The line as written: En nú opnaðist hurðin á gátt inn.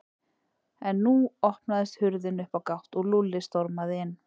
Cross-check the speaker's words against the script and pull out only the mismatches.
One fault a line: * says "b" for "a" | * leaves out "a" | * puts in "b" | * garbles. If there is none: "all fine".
* puts in "upp"
* puts in "og Lúlli stormaði"